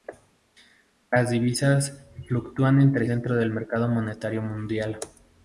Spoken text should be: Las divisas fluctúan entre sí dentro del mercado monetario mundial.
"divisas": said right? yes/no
yes